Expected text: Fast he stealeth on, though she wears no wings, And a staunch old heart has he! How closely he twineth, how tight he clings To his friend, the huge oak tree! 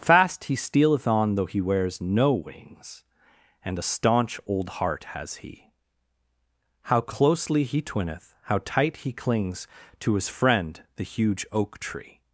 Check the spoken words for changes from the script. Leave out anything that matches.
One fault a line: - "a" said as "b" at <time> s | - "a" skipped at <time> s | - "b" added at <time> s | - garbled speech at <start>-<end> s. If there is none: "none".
- "she" said as "he" at 1.4 s